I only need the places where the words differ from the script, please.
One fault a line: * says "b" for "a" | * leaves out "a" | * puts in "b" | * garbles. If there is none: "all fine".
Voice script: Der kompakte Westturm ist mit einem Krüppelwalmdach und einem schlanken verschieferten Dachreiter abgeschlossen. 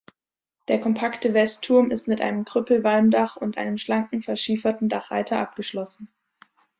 all fine